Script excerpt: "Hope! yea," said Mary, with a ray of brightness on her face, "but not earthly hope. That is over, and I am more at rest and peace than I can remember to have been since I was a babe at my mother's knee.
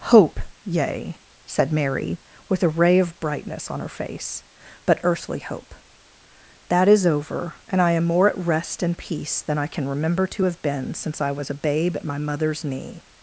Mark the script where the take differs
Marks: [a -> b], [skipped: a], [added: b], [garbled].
"Hope! yea," said Mary, with a ray of brightness on her face, "but [skipped: not] earthly hope. That is over, and I am more at rest and peace than I can remember to have been since I was a babe at my mother's knee.